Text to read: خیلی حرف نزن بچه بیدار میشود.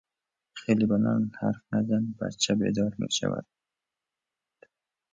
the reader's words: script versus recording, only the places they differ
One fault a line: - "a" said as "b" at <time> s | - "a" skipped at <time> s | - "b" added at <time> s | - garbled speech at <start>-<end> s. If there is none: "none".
- "بلند" added at 0.9 s